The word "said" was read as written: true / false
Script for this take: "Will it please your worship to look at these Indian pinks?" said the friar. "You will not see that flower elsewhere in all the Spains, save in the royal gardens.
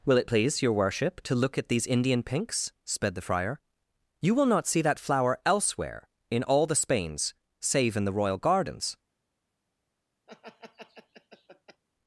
false